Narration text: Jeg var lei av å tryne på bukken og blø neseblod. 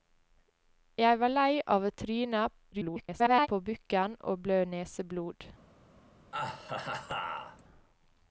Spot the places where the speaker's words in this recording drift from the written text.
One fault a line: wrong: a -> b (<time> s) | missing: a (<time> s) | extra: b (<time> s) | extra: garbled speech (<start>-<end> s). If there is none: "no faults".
extra: garbled speech (2.7-3.5 s)